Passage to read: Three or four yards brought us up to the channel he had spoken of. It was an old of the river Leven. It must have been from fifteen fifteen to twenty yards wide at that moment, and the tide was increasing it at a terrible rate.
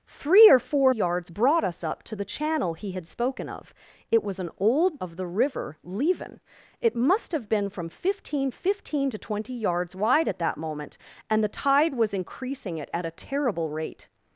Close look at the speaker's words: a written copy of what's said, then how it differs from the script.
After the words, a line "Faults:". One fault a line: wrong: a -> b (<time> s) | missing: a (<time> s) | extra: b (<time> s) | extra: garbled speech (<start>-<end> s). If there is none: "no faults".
Three or four yards brought us up to the channel he had spoken of. It was an old of the river Leven. It must have been from fifteen fifteen to twenty yards wide at that moment, and the tide was increasing it at a terrible rate.
Faults:
no faults